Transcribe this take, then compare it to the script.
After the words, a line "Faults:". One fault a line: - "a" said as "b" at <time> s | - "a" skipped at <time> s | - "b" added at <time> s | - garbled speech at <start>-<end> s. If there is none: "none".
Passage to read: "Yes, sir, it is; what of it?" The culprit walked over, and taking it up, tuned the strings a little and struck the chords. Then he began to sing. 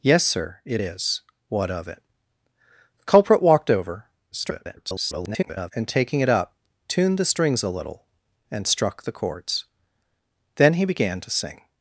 "Yes, sir, it is; what of it?" The culprit walked over, [garbled] and taking it up, tuned the strings a little and struck the chords. Then he began to sing.
Faults:
- garbled speech at 4.3-5.7 s